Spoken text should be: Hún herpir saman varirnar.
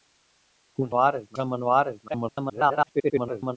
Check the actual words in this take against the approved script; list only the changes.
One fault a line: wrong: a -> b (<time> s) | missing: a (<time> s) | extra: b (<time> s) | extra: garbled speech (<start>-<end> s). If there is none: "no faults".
wrong: herpir -> varirnar (1.0 s)
extra: garbled speech (2.1-3.6 s)